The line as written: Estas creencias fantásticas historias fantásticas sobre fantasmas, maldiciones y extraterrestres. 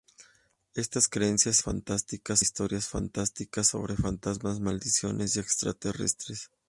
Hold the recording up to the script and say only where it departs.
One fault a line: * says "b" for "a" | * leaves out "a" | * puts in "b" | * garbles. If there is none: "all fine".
all fine